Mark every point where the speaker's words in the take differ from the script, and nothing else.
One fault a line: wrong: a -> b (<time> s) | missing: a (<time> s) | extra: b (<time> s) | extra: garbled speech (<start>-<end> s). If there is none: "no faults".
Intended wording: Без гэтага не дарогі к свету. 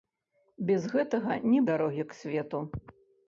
no faults